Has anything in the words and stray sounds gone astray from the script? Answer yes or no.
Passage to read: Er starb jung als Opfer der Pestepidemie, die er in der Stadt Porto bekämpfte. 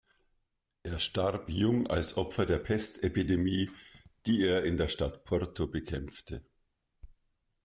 no